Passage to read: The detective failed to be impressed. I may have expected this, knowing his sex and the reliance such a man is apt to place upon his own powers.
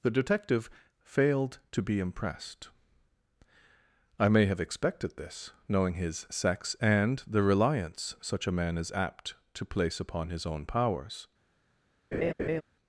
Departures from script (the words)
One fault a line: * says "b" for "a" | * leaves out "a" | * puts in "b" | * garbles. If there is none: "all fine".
all fine